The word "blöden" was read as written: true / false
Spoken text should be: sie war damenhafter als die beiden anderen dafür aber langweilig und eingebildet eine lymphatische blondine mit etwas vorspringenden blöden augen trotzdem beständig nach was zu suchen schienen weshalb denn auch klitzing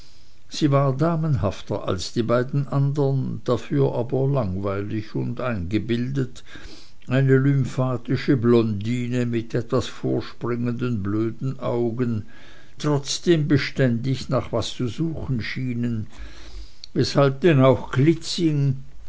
true